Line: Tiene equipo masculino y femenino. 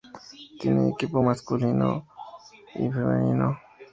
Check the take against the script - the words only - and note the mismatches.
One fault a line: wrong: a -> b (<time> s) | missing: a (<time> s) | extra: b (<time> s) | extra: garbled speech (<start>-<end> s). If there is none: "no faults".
no faults